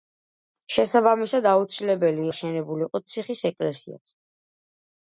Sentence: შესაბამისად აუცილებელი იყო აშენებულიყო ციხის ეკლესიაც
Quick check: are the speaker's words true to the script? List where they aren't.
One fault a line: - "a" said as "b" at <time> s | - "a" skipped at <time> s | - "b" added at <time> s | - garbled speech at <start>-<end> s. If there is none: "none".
- "იყო" skipped at 2.2 s